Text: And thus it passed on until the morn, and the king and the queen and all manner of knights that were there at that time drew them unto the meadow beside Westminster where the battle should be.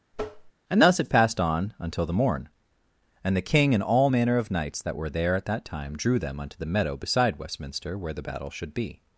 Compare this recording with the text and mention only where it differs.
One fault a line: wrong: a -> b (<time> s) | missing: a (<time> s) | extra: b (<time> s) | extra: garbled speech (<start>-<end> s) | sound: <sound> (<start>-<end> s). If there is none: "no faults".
sound: tap (0.1-0.5 s)
missing: the queen and (3.8 s)